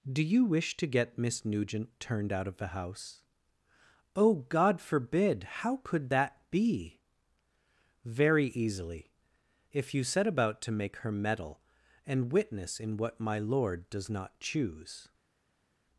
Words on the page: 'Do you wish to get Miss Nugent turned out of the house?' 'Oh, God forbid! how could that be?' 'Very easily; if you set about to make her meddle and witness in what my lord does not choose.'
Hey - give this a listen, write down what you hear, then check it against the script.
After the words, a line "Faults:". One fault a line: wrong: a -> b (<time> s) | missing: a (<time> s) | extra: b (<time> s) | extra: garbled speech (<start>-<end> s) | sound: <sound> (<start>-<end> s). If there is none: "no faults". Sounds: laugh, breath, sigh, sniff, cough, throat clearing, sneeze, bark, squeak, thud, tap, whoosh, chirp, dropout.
'Do you wish to get Miss Nugent turned out of the house?' 'Oh, God forbid! how could that be?' 'Very easily; if you set about to make her meddle and witness in what my lord does not choose.'
Faults:
no faults